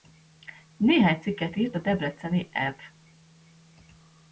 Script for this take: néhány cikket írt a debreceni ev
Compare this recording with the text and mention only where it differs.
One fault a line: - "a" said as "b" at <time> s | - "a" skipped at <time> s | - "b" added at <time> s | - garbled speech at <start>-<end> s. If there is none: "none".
none